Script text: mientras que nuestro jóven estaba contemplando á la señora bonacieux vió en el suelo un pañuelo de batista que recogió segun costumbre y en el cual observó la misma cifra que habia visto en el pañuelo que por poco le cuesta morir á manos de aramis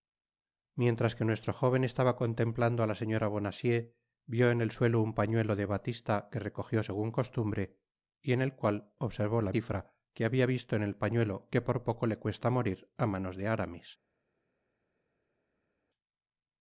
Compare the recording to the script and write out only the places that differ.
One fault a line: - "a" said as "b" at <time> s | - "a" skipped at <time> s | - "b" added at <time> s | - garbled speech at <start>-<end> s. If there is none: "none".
- "misma" skipped at 9.5 s